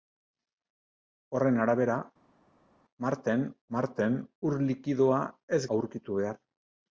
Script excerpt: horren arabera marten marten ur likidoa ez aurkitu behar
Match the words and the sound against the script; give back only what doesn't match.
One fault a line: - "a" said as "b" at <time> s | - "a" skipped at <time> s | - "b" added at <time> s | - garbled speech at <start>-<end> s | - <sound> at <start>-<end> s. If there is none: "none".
none